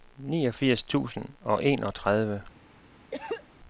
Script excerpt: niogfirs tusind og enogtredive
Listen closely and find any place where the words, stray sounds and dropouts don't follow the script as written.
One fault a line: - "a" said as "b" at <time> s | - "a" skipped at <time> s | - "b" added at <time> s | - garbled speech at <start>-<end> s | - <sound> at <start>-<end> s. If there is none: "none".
- cough at 3.1-3.4 s